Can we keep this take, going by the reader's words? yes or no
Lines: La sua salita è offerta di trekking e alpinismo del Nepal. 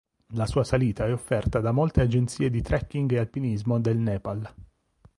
no